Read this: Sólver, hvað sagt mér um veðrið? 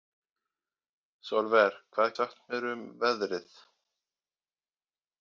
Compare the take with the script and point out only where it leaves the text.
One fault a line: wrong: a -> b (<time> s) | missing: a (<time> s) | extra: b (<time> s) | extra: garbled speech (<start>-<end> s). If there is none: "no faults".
no faults